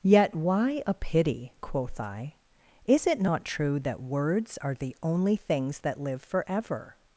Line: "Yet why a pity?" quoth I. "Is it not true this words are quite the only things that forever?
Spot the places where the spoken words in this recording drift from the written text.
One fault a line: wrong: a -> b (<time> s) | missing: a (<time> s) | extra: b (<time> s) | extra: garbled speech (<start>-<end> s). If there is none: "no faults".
wrong: this -> that (3.8 s)
missing: quite (4.7 s)
extra: live (6.0 s)